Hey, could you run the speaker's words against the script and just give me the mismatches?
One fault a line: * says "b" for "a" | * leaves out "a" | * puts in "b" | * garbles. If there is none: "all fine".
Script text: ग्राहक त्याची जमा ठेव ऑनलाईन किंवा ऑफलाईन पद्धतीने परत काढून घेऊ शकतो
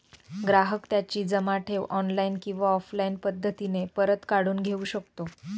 all fine